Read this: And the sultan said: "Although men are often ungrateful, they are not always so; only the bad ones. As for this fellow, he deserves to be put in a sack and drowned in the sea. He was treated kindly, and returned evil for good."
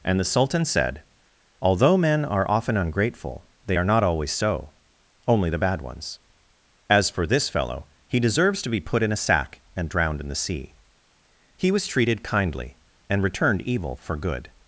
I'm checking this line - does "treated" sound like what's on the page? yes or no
yes